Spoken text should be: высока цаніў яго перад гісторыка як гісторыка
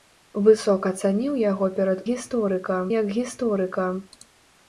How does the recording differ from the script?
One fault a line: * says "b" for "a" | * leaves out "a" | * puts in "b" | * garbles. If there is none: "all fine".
all fine